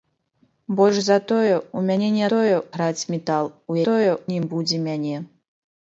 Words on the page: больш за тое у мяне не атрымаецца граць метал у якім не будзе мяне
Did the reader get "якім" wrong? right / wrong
wrong